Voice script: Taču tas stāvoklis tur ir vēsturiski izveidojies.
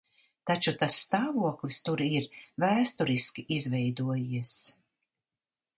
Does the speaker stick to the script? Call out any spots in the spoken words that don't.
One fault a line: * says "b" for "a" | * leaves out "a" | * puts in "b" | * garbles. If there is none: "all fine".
all fine